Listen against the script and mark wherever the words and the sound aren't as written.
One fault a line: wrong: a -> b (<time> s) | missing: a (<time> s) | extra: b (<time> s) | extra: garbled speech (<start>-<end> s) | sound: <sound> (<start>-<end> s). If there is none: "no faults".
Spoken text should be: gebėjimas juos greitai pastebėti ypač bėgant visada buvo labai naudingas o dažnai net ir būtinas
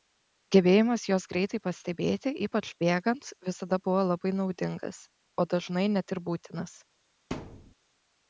sound: thud (7.3-7.7 s)